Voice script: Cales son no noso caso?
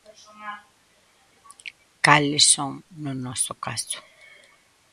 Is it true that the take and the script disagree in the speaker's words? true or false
false